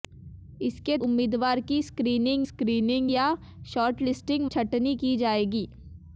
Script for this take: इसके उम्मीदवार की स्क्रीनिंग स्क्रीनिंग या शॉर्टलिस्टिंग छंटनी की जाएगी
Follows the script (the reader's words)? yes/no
yes